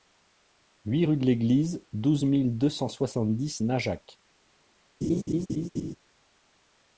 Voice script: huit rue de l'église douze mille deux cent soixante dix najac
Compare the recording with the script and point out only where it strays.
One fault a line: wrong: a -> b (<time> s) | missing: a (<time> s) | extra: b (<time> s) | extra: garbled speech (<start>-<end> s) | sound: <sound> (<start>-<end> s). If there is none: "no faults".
sound: laugh (5.0-6.0 s)